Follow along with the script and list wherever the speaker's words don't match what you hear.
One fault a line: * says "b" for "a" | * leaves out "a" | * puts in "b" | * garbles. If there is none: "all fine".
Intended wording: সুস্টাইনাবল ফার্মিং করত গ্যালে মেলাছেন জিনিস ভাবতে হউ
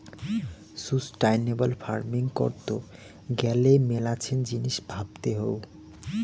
all fine